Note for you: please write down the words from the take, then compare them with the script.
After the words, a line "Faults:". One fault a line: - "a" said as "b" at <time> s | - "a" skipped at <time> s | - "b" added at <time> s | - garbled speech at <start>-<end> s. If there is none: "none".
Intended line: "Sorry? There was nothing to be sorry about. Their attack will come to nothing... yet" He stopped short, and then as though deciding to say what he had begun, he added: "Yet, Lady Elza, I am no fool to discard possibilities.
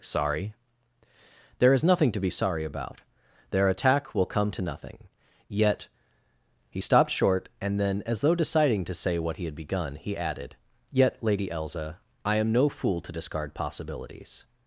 "Sorry? There is nothing to be sorry about. Their attack will come to nothing... yet" He stopped short, and then as though deciding to say what he had begun, he added: "Yet, Lady Elza, I am no fool to discard possibilities.
Faults:
- "was" said as "is" at 1.7 s